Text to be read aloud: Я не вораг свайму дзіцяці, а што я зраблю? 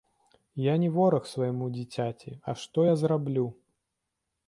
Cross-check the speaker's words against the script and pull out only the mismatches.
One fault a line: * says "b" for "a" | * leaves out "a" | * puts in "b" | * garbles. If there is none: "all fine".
all fine